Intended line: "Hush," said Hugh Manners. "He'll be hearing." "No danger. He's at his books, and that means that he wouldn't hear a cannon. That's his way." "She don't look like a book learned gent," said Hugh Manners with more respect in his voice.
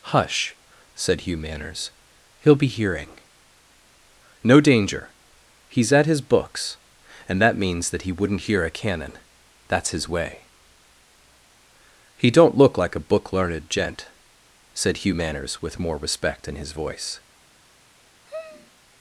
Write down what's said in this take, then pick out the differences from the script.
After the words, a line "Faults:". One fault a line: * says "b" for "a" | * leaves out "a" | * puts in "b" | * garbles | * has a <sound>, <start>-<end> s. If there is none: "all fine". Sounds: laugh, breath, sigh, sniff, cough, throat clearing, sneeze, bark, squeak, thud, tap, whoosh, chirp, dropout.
"Hush," said Hugh Manners. "He'll be hearing." "No danger. He's at his books, and that means that he wouldn't hear a cannon. That's his way." "He don't look like a book learned gent," said Hugh Manners with more respect in his voice.
Faults:
* says "He" for "She"
* has a sigh, 18.3-18.7 s